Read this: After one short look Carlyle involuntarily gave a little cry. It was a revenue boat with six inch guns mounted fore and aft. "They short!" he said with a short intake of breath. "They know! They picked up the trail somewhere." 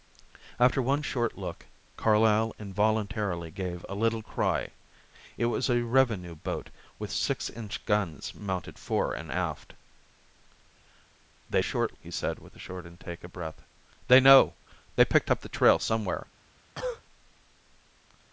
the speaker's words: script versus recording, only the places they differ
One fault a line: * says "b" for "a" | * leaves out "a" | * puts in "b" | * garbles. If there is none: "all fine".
all fine